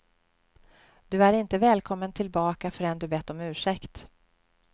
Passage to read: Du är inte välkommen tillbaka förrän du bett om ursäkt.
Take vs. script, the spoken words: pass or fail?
pass